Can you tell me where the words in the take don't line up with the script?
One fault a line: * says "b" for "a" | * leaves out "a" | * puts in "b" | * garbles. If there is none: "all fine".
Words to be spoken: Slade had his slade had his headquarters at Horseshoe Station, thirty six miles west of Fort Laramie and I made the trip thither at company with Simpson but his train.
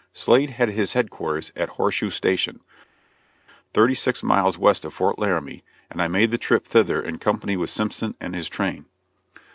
* leaves out "slade had his"
* says "in" for "at"
* says "and" for "but"